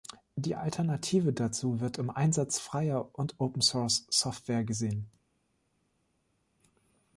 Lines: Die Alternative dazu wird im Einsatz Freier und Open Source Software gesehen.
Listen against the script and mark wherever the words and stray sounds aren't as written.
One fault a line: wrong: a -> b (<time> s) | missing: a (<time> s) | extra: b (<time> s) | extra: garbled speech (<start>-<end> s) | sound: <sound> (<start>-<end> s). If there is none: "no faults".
no faults